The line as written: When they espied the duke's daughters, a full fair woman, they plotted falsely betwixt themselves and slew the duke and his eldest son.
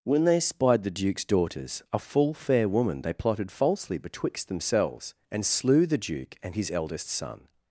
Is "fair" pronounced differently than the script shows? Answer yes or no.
no